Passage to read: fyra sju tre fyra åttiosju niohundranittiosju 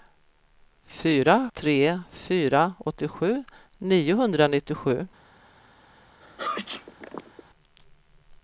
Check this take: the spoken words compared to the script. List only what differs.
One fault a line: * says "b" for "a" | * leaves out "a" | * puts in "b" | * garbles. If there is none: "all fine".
* leaves out "sju"